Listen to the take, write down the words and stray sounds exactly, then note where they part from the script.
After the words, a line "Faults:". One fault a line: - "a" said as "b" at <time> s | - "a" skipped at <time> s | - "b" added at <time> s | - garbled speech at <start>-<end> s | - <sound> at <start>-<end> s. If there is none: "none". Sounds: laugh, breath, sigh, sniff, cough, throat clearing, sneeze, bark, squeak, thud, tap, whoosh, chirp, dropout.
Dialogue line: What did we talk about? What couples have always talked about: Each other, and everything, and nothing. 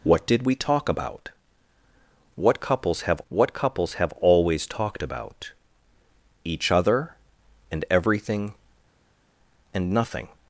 What did we talk about? What couples have what couples have always talked about: Each other, and everything, and nothing.
Faults:
- "what couples have" added at 3.3 s